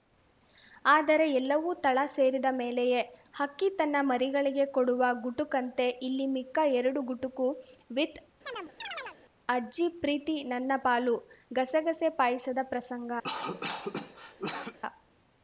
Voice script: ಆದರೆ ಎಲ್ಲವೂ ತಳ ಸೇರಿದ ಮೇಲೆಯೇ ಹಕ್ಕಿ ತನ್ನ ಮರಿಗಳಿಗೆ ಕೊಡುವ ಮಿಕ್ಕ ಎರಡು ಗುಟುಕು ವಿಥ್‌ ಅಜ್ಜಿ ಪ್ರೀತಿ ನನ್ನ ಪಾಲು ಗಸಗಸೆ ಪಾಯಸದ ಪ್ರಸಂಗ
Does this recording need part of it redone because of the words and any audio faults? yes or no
yes